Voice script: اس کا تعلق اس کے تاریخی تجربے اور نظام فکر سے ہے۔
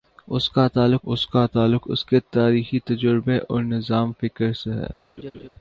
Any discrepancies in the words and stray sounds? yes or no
yes